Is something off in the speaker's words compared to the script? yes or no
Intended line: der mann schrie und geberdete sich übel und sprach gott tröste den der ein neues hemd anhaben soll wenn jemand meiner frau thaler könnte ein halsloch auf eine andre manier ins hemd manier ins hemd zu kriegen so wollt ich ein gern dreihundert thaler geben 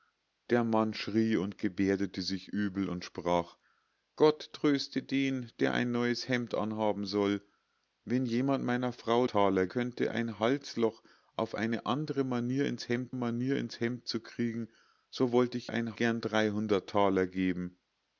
no